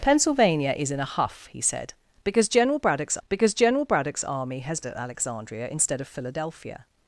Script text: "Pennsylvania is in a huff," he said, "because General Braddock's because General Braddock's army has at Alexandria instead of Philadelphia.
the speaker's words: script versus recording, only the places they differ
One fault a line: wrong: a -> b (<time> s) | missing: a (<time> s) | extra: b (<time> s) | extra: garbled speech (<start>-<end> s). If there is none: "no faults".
no faults